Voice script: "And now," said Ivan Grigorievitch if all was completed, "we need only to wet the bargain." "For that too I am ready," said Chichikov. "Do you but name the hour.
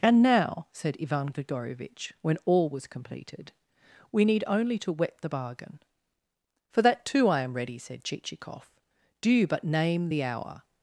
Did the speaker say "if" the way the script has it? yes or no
no